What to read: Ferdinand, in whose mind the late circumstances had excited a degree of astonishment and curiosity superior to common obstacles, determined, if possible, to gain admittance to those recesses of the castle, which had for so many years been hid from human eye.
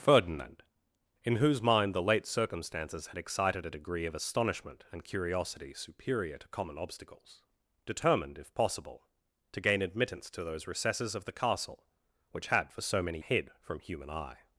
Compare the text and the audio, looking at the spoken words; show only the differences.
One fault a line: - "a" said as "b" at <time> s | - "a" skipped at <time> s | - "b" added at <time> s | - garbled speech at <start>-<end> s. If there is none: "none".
- "years been" skipped at 13.2 s